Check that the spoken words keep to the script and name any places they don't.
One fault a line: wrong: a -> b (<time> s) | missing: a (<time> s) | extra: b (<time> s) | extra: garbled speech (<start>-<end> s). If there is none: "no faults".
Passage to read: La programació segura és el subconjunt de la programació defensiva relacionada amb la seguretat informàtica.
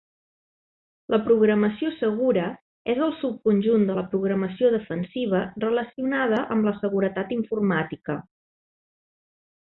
no faults